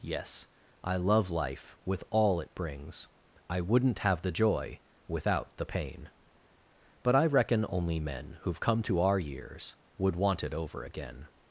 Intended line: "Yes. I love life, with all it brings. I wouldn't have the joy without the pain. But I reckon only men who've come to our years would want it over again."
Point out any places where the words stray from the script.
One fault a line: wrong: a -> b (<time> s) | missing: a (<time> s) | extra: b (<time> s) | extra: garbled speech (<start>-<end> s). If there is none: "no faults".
no faults